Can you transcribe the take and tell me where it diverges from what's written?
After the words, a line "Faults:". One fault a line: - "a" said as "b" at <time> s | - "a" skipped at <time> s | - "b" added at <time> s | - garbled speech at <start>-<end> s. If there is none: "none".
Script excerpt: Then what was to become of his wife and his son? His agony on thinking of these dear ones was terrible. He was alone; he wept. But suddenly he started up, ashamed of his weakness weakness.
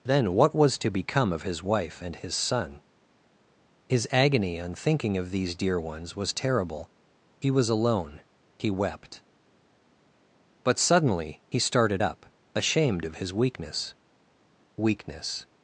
Then what was to become of his wife and his son? His agony on thinking of these dear ones was terrible. He was alone; he wept. But suddenly he started up, ashamed of his weakness weakness.
Faults:
none